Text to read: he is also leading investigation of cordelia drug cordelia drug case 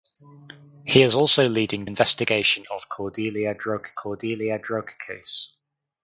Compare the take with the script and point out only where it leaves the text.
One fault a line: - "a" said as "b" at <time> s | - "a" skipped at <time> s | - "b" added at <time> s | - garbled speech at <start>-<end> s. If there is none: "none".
none